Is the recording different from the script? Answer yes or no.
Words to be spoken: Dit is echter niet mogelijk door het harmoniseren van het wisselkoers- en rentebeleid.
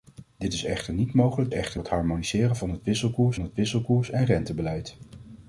yes